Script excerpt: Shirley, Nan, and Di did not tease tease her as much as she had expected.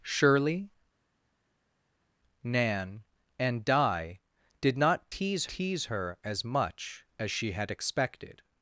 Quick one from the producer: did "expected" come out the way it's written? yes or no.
yes